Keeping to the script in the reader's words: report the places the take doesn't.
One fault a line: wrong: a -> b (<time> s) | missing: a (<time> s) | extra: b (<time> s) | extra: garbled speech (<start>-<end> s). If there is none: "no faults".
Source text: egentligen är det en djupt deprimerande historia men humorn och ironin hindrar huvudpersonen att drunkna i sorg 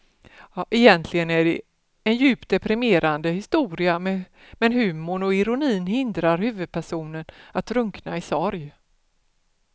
no faults